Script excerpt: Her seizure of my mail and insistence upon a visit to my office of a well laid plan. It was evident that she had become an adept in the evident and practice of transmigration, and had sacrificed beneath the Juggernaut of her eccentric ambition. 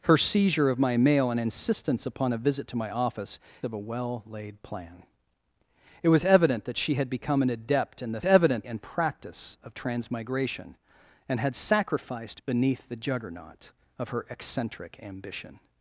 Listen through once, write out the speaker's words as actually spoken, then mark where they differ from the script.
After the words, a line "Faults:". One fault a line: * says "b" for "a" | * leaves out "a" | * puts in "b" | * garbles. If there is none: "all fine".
Her seizure of my mail and insistence upon a visit to my office of a well laid plan. It was evident that she had become an adept in the evident and practice of transmigration, and had sacrificed beneath the Juggernaut of her eccentric ambition.
Faults:
all fine